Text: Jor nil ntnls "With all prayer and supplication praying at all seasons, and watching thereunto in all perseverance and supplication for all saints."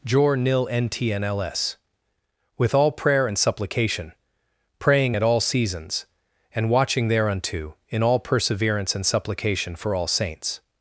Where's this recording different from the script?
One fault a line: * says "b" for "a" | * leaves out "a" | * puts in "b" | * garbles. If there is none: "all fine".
all fine